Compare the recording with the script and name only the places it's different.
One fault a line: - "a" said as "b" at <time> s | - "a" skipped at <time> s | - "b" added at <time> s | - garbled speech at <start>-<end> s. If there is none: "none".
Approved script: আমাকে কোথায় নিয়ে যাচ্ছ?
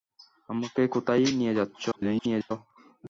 - garbled speech at 1.9-2.5 s